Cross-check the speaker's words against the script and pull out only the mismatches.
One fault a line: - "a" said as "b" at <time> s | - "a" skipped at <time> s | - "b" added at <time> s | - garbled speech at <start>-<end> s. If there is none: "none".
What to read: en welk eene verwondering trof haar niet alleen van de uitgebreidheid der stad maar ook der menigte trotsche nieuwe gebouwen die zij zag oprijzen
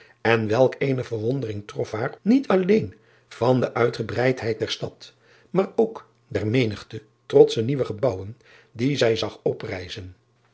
none